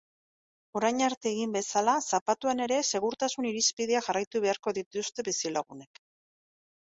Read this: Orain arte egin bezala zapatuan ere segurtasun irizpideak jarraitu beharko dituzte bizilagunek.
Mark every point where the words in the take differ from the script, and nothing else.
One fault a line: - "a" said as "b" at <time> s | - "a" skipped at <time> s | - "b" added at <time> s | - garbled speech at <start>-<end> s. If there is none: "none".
none